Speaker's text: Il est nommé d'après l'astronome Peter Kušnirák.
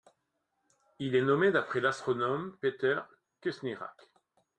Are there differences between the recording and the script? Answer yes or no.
no